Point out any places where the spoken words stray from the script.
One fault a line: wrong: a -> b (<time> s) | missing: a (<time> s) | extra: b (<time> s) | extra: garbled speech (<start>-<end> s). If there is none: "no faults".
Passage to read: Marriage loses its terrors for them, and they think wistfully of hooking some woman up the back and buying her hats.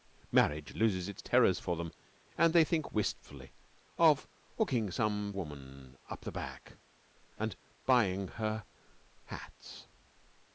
no faults